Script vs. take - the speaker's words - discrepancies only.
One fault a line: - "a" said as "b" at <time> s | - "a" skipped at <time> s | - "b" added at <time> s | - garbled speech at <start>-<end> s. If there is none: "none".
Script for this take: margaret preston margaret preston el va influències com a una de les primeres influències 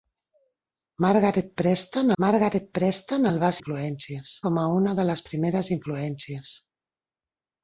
none